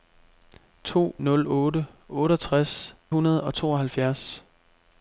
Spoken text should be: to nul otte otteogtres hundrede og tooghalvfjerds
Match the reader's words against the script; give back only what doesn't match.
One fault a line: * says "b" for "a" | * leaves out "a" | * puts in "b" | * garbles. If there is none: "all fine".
all fine